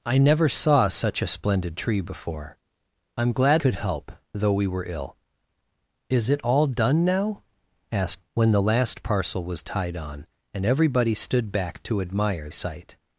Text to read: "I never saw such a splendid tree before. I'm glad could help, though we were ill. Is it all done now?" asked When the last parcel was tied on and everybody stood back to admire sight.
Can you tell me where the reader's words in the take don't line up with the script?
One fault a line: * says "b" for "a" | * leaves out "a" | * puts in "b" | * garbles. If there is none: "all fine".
all fine